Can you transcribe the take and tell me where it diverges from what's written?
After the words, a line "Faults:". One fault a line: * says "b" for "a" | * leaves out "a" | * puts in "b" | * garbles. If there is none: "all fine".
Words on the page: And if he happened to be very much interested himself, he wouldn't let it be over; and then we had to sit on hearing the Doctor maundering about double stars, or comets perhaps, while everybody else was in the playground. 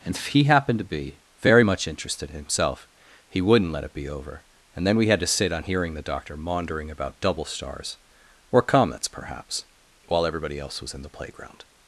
And if he happened to be very much interested himself, he wouldn't let it be over; and then we had to sit on hearing the Doctor maundering about double stars, or comets perhaps, while everybody else was in the playground.
Faults:
all fine